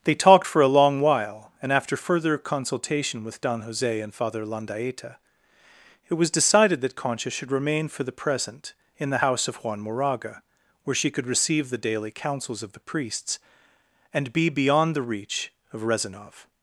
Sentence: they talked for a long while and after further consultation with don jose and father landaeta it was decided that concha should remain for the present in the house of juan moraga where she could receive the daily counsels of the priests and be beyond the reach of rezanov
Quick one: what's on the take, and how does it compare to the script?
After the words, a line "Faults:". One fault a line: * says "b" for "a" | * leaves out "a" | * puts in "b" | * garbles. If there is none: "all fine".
they talked for a long while and after further consultation with don jose and father landaeta it was decided that concha should remain for the present in the house of juan moraga where she could receive the daily counsels of the priests and be beyond the reach of rezanov
Faults:
all fine